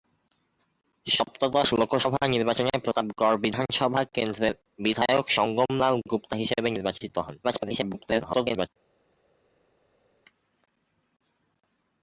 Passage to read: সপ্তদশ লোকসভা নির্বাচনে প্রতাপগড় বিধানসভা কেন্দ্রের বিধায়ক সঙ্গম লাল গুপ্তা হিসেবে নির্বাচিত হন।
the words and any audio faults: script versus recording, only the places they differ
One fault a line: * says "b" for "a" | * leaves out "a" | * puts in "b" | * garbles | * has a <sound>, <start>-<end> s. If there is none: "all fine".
* garbles